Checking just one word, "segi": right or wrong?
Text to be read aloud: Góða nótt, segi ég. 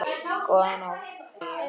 wrong